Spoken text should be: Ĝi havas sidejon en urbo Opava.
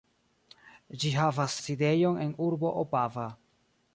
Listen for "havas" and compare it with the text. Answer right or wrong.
right